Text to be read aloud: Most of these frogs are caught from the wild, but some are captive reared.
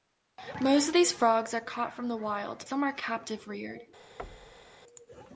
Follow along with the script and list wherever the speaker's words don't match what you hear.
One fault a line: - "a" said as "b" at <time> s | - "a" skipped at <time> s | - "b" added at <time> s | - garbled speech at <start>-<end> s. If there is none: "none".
- "but" skipped at 2.7 s